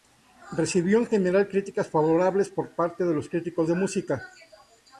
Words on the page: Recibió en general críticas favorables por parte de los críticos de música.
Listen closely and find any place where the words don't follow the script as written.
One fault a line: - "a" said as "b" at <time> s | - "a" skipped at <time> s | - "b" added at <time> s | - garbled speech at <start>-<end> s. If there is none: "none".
none